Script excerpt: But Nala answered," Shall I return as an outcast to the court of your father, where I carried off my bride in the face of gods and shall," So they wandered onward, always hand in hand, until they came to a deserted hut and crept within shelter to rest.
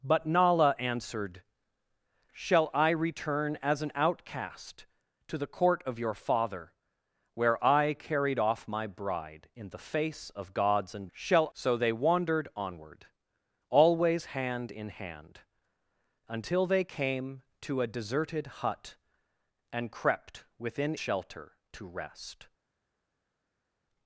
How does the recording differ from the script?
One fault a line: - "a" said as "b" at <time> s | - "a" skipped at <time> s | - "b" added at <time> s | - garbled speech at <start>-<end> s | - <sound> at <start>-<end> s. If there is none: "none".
none